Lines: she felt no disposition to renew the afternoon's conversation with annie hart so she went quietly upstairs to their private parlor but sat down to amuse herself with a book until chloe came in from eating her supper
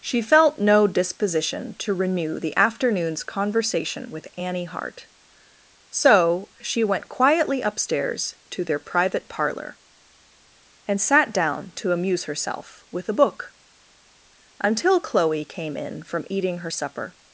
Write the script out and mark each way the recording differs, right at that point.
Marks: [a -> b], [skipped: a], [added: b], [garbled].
she felt no disposition to renew the afternoon's conversation with annie hart so she went quietly upstairs to their private parlor [but -> and] sat down to amuse herself with a book until chloe came in from eating her supper